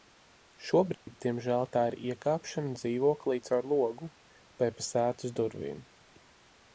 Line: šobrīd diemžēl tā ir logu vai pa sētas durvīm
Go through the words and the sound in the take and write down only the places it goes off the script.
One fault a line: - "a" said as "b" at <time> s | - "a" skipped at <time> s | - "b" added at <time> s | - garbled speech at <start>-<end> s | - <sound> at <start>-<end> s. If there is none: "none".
- dropout at 0.9-1.1 s
- "iekāpšana dzīvoklī caur" added at 2.1 s